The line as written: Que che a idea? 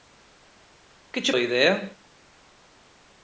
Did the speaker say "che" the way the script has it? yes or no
yes